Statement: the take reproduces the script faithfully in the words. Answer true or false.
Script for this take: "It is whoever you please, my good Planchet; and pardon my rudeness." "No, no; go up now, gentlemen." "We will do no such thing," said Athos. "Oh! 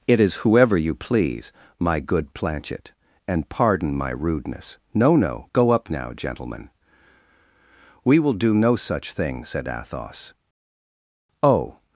true